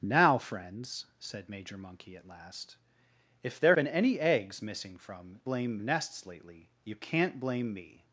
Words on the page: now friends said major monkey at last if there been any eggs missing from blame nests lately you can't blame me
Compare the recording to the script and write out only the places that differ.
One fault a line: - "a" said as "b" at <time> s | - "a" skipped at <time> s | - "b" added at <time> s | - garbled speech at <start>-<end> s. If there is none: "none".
none